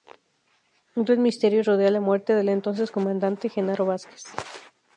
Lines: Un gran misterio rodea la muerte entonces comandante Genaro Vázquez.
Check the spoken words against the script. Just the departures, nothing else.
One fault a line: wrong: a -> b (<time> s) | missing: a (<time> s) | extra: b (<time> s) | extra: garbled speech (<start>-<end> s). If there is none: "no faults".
extra: del (2.3 s)